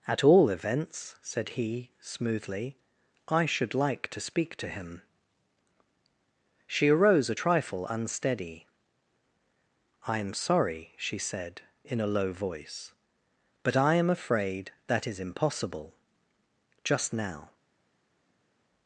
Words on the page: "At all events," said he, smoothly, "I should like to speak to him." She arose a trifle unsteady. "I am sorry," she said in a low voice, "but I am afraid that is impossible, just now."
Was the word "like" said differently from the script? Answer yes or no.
no